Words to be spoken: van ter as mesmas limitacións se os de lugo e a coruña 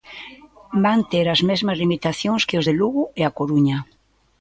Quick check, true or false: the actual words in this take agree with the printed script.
false